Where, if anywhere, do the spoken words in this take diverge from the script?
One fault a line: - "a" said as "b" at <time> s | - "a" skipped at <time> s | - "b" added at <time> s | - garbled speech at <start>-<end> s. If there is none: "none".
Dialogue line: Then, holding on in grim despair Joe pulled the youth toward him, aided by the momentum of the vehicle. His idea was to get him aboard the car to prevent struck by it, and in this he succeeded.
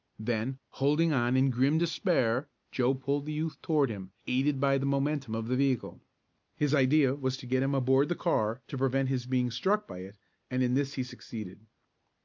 - "his being" added at 9.1 s